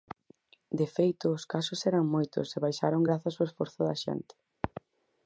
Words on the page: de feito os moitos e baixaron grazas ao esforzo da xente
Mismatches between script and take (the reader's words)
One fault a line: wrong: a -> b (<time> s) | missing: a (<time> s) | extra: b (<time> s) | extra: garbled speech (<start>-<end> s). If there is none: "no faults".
extra: casos eran (1.5 s)